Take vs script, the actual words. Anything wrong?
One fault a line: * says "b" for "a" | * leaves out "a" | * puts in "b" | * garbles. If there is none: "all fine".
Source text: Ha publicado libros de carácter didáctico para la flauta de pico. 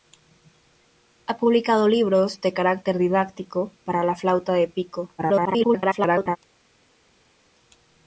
* garbles